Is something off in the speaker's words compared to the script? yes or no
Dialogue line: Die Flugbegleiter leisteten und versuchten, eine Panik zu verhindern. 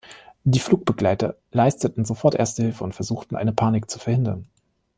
yes